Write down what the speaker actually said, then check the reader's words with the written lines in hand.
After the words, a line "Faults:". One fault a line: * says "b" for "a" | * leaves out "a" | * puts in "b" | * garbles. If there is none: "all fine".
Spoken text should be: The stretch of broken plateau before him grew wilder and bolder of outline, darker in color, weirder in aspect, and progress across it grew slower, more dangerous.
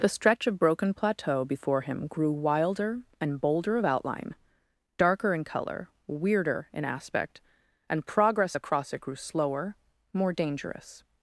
The stretch of broken plateau before him grew wilder and bolder of outline, darker in color, weirder in aspect, and progress across it grew slower, more dangerous.
Faults:
all fine